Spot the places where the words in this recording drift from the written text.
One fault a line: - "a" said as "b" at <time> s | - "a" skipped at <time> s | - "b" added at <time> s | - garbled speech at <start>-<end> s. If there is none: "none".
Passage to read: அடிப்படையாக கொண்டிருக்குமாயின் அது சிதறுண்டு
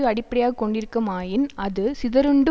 none